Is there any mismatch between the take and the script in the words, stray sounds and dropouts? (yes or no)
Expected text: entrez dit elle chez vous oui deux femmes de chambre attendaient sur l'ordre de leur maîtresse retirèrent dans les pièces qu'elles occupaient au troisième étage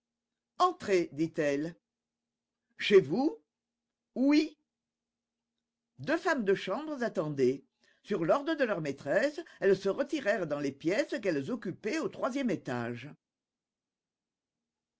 yes